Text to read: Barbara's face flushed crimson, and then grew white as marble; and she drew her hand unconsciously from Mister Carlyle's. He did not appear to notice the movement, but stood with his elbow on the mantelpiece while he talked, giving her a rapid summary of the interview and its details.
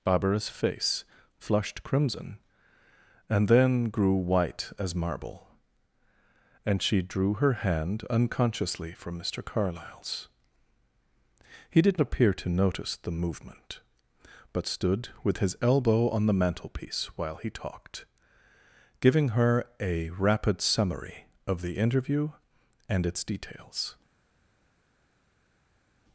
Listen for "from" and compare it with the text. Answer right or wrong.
right